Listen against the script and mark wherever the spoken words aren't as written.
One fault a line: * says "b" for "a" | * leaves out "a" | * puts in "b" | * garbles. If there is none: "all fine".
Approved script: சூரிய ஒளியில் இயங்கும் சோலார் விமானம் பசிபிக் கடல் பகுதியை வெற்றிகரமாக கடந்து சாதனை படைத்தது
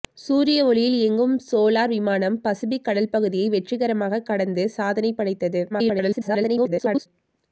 * garbles